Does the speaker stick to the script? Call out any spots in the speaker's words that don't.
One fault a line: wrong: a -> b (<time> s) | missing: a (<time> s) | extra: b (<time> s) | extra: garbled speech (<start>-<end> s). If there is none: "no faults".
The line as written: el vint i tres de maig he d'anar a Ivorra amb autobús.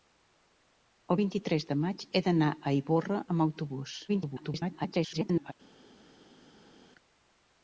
extra: garbled speech (4.1-5.5 s)